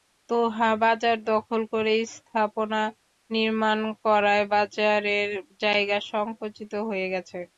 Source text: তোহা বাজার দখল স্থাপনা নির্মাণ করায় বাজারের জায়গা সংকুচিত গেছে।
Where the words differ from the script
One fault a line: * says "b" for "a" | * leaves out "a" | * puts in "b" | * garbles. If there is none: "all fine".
* puts in "করে"
* puts in "হয়ে"